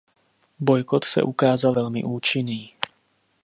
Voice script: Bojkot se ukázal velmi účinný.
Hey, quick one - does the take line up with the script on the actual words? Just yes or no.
yes